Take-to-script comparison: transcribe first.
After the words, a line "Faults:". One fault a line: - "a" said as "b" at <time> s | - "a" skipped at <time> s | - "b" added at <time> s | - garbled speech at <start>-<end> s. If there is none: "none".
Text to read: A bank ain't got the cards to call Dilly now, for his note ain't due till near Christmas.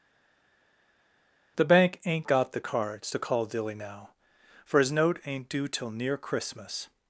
The bank ain't got the cards to call Dilly now, for his note ain't due till near Christmas.
Faults:
- "A" said as "The" at 1.6 s